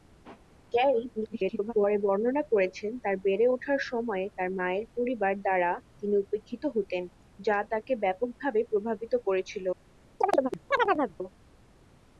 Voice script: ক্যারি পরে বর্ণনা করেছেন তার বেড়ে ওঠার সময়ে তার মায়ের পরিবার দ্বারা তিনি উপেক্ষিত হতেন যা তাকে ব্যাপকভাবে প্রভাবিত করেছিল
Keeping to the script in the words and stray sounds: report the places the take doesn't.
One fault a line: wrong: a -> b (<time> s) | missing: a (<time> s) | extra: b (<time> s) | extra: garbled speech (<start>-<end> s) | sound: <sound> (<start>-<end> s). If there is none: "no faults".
extra: garbled speech (1.2-1.7 s)
sound: chirp (10.2-11.2 s)